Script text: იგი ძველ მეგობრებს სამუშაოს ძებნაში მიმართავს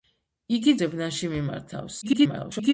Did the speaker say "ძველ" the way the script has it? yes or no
no